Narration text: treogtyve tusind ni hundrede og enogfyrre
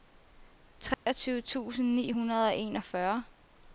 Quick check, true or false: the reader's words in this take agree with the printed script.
true